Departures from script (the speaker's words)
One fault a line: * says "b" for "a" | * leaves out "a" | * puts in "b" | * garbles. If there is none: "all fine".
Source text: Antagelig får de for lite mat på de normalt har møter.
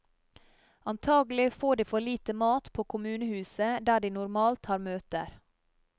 * puts in "kommunehuset der"